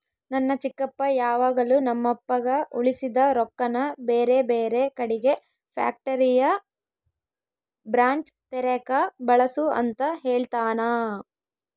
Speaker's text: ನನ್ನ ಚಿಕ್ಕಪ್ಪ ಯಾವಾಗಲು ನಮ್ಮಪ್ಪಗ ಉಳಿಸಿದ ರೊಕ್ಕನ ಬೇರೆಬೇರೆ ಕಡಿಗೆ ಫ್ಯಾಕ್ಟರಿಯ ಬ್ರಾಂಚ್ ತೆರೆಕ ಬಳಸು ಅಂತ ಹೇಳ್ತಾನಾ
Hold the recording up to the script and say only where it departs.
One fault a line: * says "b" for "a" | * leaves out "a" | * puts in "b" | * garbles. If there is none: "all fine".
all fine